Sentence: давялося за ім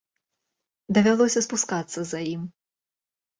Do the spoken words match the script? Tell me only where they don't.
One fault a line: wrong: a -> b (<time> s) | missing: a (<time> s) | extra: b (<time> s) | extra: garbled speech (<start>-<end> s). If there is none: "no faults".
extra: спускацца (1.4 s)